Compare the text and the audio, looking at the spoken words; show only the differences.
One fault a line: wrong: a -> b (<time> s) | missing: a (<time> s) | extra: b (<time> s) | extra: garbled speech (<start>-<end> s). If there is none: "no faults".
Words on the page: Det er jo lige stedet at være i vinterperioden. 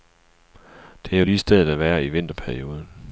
no faults